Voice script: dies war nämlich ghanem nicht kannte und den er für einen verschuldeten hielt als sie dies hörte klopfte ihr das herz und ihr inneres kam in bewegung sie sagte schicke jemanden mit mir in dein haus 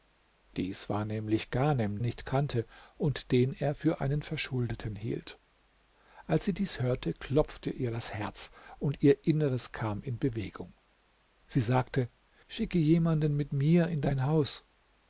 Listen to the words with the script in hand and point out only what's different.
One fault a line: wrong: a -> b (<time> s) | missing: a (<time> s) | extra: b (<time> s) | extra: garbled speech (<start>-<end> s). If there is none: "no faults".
no faults